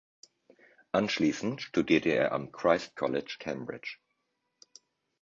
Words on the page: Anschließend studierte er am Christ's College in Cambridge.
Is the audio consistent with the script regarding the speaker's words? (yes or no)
no